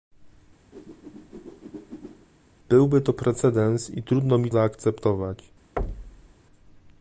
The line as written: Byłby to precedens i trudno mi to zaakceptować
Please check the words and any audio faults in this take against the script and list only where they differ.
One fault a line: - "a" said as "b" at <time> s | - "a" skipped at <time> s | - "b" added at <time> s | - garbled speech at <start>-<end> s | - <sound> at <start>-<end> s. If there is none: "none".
- whoosh at 0.7-2.3 s
- "to" skipped at 4.5 s
- thud at 5.8-6.4 s